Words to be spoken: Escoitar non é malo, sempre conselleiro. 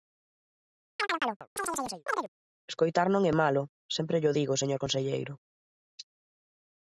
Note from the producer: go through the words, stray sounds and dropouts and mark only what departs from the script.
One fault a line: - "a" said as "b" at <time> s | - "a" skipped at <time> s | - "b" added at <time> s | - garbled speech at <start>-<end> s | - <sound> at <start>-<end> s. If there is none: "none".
- chirp at 1.0-2.3 s
- "llo digo señor" added at 4.2 s